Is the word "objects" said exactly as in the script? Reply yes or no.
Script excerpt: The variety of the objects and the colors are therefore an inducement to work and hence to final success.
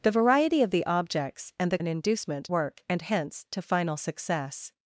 yes